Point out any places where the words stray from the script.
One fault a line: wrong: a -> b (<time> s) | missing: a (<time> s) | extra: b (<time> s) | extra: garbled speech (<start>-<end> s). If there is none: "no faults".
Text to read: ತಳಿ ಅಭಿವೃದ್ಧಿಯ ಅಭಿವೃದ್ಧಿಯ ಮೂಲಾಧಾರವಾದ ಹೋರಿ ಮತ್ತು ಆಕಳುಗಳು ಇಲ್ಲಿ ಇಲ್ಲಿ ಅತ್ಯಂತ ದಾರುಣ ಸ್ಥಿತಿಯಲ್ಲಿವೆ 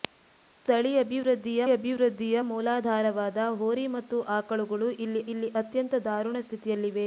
no faults